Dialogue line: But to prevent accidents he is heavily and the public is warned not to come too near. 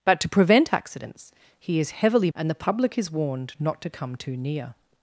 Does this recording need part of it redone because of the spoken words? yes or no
no